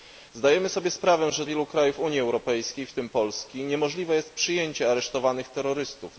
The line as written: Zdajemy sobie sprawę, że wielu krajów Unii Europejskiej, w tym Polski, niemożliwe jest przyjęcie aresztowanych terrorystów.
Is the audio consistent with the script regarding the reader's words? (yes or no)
yes